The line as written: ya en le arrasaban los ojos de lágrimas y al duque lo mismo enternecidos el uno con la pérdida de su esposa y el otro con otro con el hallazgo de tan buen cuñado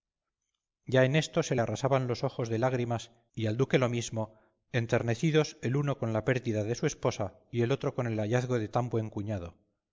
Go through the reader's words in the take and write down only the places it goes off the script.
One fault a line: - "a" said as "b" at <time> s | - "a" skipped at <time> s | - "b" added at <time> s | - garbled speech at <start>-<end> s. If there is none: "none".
- "esto se" added at 1.1 s
- "otro con" skipped at 8.1 s